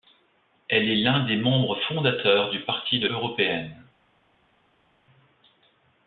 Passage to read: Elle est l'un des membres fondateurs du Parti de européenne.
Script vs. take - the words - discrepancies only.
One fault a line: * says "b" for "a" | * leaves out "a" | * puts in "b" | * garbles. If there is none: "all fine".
all fine